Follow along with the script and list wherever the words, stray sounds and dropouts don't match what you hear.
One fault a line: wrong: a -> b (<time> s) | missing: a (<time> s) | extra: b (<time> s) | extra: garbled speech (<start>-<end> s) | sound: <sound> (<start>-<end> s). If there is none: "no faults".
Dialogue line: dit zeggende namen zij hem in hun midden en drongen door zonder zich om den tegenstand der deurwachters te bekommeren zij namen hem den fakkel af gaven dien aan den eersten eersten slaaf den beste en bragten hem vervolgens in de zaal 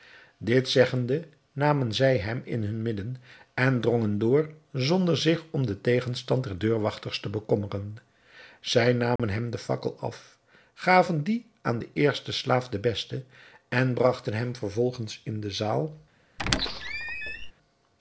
sound: dropout (9.2-9.2 s)
missing: eersten (12.3 s)
sound: squeak (16.4-17.5 s)